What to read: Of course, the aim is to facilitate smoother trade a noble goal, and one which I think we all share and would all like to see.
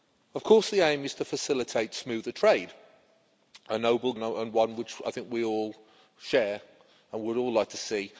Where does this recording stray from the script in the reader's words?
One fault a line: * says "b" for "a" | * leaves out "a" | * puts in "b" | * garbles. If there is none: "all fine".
* leaves out "goal"